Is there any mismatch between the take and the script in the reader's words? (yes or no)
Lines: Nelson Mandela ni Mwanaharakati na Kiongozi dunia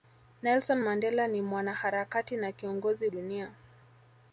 no